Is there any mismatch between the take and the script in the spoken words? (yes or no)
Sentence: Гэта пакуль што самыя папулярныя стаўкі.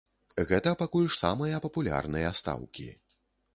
yes